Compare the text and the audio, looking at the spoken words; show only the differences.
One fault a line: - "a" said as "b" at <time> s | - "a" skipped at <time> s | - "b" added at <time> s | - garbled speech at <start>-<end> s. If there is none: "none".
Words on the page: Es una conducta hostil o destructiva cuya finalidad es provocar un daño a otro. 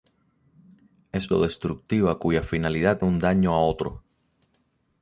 - "una conducta hostil" skipped at 1.3 s
- "es provocar" skipped at 3.0 s